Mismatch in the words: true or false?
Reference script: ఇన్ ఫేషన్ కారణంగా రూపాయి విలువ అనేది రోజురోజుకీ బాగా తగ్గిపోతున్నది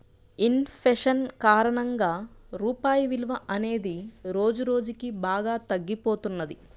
false